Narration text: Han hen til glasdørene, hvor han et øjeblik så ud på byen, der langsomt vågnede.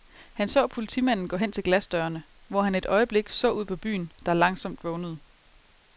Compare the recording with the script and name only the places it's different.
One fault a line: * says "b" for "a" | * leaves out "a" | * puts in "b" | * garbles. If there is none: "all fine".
* puts in "så politimanden gå"